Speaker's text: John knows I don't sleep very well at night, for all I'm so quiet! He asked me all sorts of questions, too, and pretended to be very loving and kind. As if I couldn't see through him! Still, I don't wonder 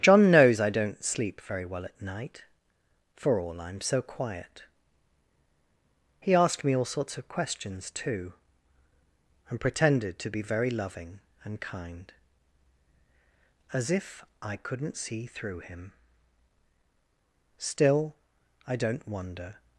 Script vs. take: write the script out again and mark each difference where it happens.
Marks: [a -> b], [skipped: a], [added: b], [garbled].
John knows I don't sleep very well at night, for all I'm so quiet! He asked me all sorts of questions, too, and pretended to be very loving and kind. As if I couldn't see through him! Still, I don't wonder